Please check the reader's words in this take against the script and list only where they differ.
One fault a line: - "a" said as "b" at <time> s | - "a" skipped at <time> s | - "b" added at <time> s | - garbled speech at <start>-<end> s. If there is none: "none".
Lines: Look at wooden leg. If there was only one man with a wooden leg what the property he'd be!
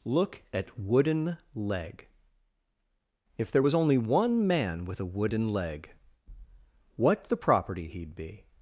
none